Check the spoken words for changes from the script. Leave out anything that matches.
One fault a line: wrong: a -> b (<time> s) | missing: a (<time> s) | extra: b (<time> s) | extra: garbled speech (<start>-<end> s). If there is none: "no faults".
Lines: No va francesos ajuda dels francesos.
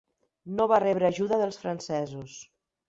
wrong: francesos -> rebre (0.8 s)